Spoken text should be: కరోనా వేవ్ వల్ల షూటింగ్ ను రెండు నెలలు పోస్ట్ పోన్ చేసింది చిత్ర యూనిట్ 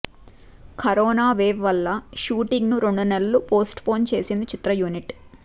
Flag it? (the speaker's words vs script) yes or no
no